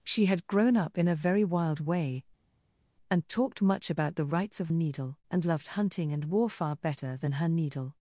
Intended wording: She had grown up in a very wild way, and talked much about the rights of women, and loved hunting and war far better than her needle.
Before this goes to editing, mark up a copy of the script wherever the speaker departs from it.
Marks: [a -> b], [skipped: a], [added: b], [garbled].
She had grown up in a very wild way, and talked much about the rights of [women, -> needle] and loved hunting and war far better than her needle.